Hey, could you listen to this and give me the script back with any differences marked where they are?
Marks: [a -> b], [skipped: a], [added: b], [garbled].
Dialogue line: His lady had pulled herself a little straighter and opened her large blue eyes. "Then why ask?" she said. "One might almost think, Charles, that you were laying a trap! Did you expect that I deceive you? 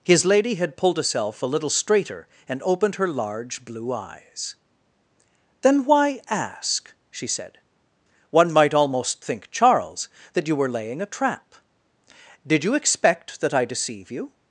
His lady had pulled herself a little straighter and opened her large blue eyes. "Then why ask?" she said. "One might almost think, Charles, that you were laying a trap! Did you expect that I deceive you?